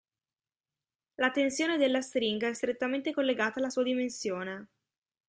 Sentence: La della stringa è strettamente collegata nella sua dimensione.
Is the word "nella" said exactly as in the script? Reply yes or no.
no